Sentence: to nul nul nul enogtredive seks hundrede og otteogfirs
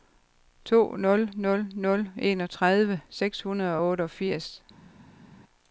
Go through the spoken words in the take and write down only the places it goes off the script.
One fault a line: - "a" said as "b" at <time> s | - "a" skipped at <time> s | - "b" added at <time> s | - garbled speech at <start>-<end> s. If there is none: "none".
none